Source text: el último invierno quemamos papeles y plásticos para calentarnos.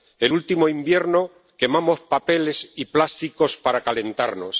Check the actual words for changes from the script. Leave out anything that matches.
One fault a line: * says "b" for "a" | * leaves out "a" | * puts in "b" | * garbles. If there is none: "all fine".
all fine